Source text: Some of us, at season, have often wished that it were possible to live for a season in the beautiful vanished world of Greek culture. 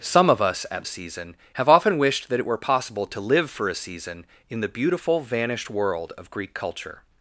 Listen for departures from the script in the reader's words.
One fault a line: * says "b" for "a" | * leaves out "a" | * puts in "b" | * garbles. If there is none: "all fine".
all fine